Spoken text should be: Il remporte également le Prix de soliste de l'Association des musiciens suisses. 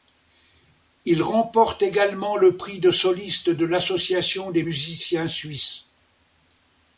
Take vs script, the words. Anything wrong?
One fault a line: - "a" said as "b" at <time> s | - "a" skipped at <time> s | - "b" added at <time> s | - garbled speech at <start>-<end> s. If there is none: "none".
none